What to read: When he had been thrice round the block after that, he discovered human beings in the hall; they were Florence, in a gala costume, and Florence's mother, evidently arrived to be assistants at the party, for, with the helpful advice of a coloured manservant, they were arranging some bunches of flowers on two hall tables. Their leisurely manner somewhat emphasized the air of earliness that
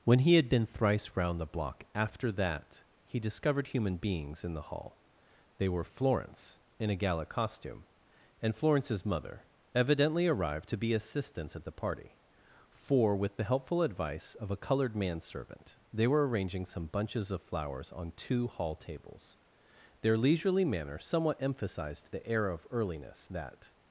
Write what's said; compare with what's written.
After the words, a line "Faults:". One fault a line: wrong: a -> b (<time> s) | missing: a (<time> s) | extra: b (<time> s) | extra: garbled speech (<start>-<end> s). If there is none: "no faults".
When he had been thrice round the block after that, he discovered human beings in the hall; they were Florence, in a gala costume, and Florence's mother, evidently arrived to be assistants at the party, for, with the helpful advice of a coloured manservant, they were arranging some bunches of flowers on two hall tables. Their leisurely manner somewhat emphasized the air of earliness that
Faults:
no faults